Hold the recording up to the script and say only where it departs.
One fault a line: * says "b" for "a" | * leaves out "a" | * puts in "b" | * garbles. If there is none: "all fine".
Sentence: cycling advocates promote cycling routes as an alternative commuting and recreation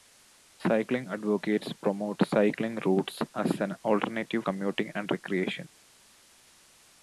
all fine